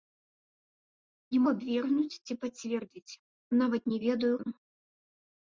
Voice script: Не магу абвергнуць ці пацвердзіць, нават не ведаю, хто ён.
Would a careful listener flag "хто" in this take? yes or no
yes